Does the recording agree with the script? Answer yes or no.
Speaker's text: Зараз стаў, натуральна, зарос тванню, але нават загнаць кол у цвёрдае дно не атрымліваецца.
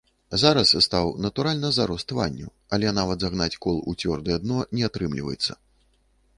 yes